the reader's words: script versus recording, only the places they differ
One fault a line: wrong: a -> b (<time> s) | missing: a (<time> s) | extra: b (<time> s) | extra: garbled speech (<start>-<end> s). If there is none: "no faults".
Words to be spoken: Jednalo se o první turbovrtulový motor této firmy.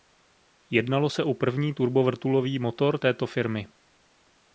no faults